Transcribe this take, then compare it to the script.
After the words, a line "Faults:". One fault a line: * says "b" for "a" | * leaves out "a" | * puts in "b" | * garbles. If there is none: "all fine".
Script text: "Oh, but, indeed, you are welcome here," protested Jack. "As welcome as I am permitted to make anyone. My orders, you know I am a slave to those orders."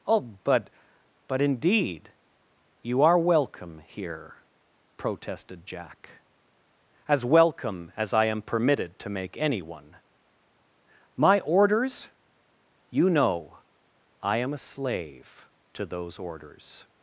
"Oh, but but, indeed, you are welcome here," protested Jack. "As welcome as I am permitted to make anyone. My orders, you know I am a slave to those orders."
Faults:
* puts in "but"